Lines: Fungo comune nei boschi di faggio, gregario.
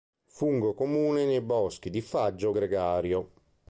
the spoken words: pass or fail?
pass